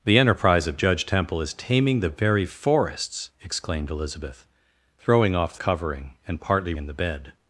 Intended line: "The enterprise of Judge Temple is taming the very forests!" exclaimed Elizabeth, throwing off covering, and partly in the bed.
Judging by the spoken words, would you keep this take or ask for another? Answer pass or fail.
pass